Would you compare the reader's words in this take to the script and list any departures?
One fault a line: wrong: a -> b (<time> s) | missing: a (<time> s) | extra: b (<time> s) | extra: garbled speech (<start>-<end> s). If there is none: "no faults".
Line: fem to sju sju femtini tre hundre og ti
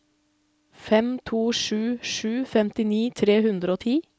no faults